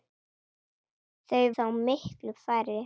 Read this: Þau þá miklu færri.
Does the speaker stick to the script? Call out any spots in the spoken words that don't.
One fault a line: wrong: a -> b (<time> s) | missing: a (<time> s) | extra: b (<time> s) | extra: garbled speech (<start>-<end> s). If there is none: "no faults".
no faults